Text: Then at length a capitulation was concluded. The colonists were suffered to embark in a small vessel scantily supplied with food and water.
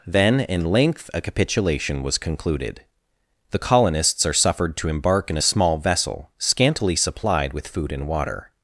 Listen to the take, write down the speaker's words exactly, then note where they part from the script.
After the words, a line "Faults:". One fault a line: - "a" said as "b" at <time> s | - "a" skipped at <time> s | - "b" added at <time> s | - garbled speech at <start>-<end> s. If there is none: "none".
Then in length a capitulation was concluded. The colonists are suffered to embark in a small vessel scantily supplied with food and water.
Faults:
- "at" said as "in" at 0.4 s
- "were" said as "are" at 4.2 s